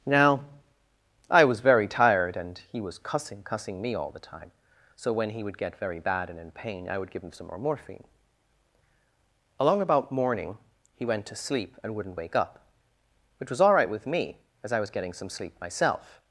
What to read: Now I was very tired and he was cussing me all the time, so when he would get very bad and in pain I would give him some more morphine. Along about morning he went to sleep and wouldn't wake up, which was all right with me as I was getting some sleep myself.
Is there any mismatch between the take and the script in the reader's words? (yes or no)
yes